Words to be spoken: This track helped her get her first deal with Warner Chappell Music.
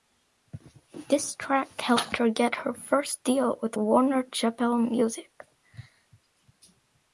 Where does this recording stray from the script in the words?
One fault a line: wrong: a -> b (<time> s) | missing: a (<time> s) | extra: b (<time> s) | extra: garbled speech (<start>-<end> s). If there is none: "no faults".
no faults